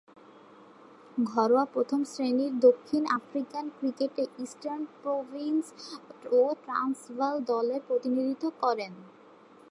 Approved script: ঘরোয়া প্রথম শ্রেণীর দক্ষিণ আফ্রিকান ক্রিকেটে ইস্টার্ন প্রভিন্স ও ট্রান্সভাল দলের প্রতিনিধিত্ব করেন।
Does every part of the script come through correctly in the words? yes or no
yes